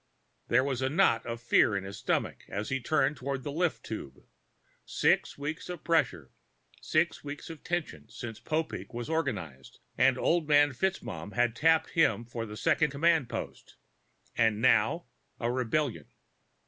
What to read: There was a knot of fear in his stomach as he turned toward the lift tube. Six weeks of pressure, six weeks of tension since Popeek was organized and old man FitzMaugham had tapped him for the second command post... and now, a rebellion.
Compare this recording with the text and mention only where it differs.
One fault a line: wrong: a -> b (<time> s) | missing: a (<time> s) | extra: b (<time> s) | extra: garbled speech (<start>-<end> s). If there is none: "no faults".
no faults